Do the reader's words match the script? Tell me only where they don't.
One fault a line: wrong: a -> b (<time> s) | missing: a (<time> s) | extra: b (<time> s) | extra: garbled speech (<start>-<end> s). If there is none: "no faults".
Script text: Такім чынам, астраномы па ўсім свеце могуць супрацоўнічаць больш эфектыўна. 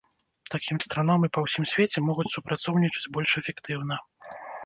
missing: чынам (0.8 s)